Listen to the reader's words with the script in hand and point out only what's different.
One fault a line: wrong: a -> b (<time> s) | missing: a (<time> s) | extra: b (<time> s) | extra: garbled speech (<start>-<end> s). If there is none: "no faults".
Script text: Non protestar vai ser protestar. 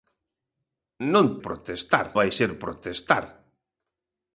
no faults